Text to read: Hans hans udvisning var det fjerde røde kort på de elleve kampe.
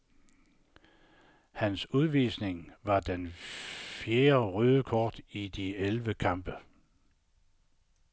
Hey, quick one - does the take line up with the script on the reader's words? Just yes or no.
no